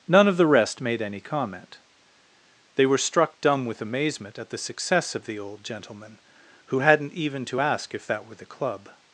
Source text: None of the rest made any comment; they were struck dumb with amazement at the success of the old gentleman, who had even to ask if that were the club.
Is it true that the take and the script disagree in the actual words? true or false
true